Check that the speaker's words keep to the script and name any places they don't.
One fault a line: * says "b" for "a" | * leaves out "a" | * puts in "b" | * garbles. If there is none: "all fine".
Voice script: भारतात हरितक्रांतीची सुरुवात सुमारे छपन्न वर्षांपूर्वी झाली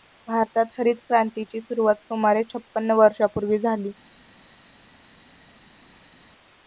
all fine